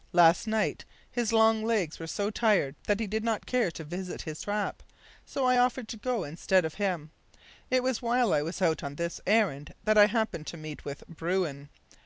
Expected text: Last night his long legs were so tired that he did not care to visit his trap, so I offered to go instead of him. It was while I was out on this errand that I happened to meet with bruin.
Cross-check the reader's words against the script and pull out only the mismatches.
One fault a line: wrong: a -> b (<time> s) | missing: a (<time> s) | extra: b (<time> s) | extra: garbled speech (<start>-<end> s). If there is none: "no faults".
no faults